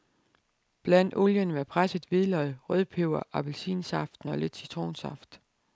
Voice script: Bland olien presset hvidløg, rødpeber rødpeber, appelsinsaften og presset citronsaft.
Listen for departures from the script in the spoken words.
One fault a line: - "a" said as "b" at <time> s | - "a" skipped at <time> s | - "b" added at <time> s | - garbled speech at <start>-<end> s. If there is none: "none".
- "med" added at 1.5 s
- "rødpeber" skipped at 3.2 s
- "presset" said as "lidt" at 4.4 s